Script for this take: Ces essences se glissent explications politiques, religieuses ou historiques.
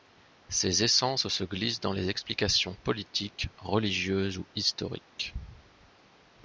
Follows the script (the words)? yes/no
no